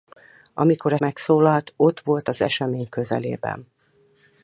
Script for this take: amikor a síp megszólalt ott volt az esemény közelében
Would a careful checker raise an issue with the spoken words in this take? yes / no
yes